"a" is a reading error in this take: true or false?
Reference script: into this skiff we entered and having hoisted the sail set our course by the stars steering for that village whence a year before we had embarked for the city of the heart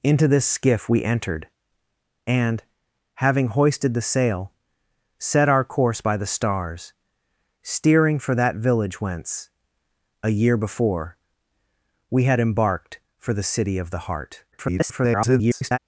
false